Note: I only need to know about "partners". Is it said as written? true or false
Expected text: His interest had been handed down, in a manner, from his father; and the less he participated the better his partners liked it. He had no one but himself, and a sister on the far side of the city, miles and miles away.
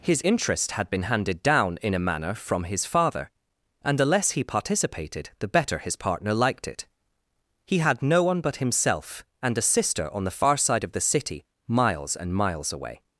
false